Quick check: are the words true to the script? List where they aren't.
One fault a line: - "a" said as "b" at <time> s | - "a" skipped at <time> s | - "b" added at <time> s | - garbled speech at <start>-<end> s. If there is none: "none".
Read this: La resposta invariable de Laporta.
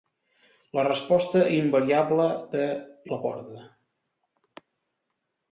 none